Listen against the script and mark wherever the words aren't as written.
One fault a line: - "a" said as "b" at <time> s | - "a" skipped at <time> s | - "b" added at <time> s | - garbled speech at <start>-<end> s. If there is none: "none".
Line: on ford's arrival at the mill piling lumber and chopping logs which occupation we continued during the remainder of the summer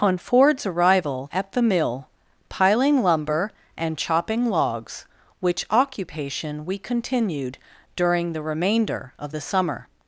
none